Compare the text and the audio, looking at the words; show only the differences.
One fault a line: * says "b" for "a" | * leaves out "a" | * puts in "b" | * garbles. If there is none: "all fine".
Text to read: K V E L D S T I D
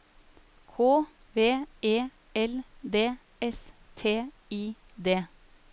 all fine